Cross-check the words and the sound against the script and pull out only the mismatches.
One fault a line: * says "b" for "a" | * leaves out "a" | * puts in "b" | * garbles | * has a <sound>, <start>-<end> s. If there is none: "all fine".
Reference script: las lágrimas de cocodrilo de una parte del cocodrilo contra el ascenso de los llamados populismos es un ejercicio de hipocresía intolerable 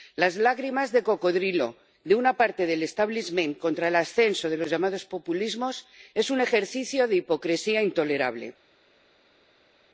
* says "establishment" for "cocodrilo"